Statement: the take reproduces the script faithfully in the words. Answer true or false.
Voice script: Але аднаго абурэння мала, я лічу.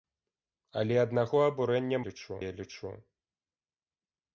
false